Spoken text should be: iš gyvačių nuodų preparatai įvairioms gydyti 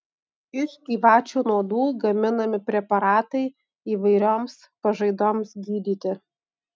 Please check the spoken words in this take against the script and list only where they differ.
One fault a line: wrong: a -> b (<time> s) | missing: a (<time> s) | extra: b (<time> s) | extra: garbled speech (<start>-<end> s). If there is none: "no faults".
extra: gaminami (2.0 s)
extra: pažaidoms (4.9 s)